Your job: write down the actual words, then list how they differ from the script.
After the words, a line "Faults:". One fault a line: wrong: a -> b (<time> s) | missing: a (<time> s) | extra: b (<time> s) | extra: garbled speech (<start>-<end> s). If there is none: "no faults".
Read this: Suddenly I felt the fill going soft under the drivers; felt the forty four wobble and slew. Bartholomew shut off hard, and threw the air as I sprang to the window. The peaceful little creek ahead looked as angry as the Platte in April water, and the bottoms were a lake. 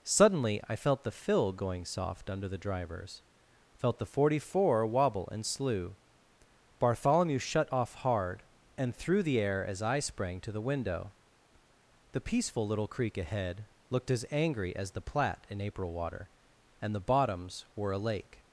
Suddenly I felt the fill going soft under the drivers; felt the forty four wobble and slew. Bartholomew shut off hard, and threw the air as I sprang to the window. The peaceful little creek ahead looked as angry as the Platte in April water, and the bottoms were a lake.
Faults:
no faults